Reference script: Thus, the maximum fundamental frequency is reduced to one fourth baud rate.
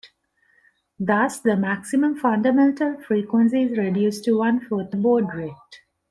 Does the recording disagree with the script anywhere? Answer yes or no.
no